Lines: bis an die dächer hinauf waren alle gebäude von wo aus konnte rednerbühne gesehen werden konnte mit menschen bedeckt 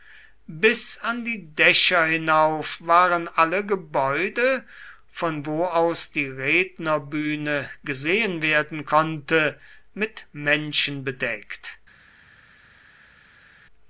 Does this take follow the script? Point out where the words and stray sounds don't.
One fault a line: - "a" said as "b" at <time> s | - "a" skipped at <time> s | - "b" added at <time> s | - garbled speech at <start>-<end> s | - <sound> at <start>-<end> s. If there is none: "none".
- "konnte" said as "die" at 6.1 s